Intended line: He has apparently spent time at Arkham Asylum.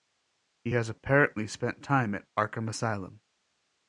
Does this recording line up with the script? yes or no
yes